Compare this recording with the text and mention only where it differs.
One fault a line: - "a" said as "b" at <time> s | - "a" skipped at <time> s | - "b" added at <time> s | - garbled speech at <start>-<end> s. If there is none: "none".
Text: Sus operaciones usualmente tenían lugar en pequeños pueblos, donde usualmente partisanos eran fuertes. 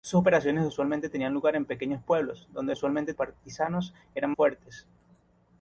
none